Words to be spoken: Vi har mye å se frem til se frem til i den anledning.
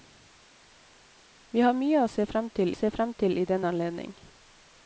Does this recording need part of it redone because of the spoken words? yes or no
no